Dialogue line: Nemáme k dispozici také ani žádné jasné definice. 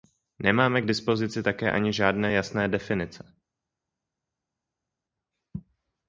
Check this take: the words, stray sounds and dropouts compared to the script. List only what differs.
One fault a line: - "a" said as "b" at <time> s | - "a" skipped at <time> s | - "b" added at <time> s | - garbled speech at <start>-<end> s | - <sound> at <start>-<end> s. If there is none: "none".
none